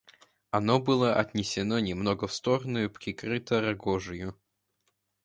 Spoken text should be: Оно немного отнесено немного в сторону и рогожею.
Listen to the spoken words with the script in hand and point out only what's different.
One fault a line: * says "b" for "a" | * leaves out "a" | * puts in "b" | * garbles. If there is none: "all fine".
* says "было" for "немного"
* puts in "прикрыто"